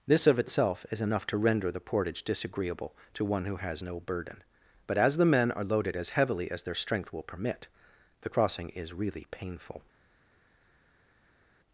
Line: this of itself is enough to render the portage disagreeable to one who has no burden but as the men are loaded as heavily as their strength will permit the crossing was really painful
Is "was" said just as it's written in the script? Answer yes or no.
no